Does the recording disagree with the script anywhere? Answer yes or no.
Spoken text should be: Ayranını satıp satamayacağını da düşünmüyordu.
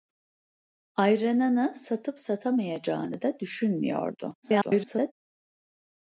yes